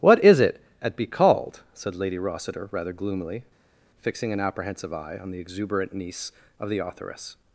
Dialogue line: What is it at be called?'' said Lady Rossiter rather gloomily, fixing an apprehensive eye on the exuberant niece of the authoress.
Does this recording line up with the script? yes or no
yes